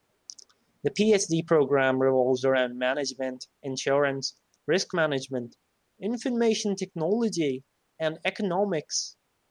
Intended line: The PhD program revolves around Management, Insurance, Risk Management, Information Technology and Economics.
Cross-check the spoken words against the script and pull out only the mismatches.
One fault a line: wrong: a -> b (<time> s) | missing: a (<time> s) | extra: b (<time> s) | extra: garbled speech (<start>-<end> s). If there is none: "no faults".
no faults